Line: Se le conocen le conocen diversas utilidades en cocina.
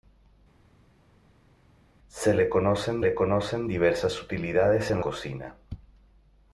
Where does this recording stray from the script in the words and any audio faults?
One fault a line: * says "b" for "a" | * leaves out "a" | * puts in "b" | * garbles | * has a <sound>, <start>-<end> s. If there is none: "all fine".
all fine